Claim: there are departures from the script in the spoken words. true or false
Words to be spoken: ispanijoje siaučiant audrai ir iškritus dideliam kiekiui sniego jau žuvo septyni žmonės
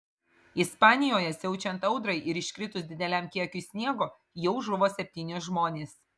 false